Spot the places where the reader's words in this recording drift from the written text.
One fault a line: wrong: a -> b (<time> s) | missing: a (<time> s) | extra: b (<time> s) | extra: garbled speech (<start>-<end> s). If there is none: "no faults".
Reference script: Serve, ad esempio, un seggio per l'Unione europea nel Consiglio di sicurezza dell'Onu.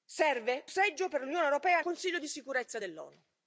missing: ad esempio un (0.7 s)
missing: nel (1.8 s)